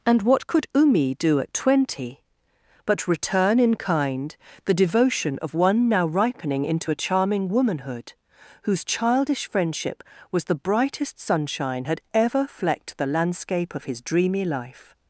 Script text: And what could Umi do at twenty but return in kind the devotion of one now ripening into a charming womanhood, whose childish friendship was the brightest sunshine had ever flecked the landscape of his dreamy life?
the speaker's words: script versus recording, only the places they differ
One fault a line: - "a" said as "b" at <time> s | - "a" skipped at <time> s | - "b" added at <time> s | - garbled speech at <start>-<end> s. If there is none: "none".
none